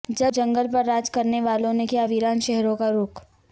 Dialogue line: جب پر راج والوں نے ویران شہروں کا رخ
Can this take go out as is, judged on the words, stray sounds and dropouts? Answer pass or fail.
fail